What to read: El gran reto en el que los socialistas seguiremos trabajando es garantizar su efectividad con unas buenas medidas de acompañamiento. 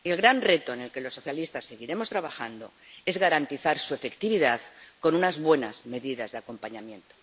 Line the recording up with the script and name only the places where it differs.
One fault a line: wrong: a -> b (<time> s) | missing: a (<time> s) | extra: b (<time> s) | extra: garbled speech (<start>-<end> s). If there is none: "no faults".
no faults